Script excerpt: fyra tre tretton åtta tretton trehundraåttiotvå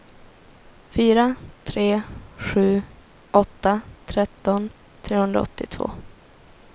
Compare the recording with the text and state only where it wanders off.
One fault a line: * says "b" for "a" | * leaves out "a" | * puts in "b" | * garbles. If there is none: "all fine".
* says "sju" for "tretton"